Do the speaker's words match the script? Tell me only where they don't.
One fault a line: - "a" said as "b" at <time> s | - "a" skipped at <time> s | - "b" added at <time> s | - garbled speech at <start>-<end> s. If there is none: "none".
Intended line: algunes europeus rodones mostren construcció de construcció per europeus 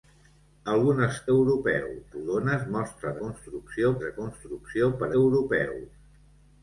none